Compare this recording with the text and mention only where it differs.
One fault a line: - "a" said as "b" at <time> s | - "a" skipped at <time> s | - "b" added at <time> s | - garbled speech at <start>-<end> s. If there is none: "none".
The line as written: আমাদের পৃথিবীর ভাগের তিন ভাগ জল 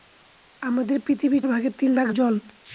none